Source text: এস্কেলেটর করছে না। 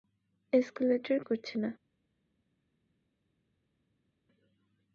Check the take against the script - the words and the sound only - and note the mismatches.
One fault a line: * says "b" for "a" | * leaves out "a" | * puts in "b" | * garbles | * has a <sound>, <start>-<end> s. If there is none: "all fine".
all fine